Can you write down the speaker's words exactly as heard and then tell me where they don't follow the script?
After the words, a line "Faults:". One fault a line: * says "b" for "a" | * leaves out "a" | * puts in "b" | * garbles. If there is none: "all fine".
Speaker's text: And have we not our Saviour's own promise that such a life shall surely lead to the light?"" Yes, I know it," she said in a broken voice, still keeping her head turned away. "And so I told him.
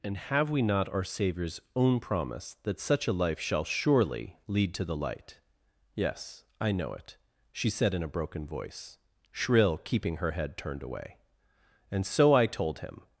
And have we not our Saviour's own promise that such a life shall surely lead to the light?"" Yes, I know it," she said in a broken voice, shrill keeping her head turned away. "And so I told him.
Faults:
* says "shrill" for "still"